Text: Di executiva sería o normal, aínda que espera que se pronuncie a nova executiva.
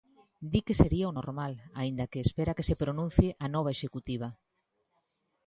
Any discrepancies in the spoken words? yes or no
yes